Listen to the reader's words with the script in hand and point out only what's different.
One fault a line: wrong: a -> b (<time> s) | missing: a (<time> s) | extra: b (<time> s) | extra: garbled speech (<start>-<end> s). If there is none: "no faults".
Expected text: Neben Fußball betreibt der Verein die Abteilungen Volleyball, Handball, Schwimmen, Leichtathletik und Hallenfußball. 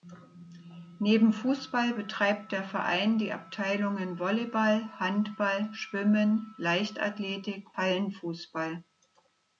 missing: und (7.8 s)